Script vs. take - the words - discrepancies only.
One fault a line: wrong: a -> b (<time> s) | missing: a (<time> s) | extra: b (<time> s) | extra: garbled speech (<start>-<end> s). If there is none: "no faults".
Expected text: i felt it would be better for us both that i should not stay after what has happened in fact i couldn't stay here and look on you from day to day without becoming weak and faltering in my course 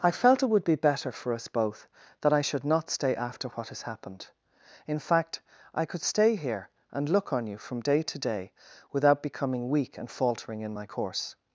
wrong: couldn't -> could (5.8 s)